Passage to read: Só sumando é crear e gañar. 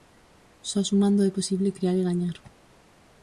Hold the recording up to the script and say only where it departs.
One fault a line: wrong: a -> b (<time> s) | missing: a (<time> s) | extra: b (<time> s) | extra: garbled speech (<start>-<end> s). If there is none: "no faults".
extra: posible (1.4 s)